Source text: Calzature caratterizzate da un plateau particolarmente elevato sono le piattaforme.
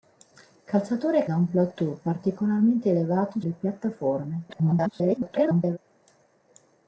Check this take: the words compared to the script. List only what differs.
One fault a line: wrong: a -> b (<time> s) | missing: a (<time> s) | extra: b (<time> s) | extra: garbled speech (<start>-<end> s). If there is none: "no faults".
missing: caratterizzate (1.2 s)
missing: sono (3.4 s)
extra: garbled speech (4.5-5.8 s)